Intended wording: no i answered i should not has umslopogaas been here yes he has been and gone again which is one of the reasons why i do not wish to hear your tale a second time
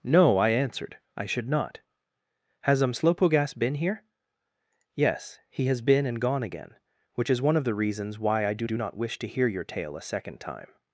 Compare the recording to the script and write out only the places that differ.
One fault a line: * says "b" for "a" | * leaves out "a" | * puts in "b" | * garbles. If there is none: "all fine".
* puts in "do"